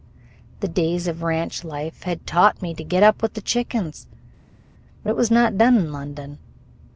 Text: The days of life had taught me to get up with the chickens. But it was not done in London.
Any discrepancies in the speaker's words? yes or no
yes